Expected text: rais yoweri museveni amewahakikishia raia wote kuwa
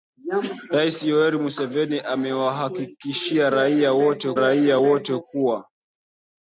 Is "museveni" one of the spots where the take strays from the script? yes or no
no